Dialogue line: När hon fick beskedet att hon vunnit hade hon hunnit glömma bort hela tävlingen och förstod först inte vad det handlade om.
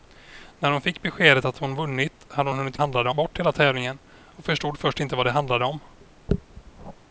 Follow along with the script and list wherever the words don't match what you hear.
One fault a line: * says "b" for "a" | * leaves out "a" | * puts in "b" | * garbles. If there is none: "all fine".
* says "handlade" for "glömma"